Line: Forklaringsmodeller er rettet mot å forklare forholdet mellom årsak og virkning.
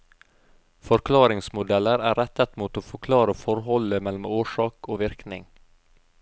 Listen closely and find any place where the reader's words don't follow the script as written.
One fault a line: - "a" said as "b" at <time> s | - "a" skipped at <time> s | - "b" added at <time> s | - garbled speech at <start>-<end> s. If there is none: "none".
none